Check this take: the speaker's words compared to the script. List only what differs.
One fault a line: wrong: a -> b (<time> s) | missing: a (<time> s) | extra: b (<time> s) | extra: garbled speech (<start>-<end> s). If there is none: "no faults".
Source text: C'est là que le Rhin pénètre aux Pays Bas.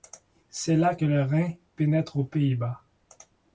no faults